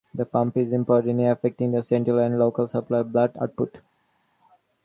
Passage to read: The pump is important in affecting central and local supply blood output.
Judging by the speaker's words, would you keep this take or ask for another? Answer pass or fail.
fail